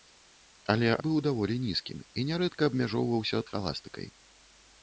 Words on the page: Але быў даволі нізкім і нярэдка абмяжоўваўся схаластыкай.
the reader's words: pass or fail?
pass